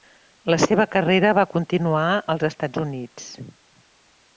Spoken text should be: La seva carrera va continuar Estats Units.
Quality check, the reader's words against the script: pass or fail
fail